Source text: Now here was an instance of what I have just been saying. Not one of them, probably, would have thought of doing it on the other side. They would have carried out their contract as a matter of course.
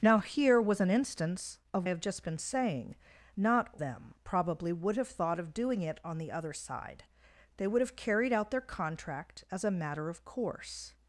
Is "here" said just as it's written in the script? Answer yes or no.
yes